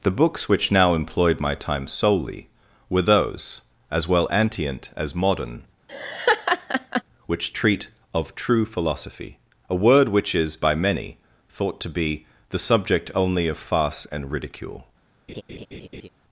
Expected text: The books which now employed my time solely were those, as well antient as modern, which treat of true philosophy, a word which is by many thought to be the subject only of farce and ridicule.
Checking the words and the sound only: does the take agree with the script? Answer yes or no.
no